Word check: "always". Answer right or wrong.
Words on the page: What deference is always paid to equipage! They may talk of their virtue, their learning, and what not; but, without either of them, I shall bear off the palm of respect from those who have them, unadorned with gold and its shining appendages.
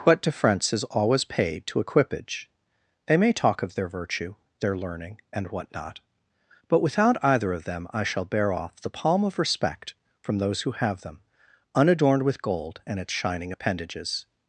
right